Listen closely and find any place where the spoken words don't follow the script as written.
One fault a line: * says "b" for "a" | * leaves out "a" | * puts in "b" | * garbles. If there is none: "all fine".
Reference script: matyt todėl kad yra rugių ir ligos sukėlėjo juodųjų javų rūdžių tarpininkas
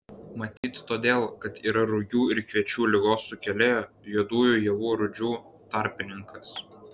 * puts in "kviečių"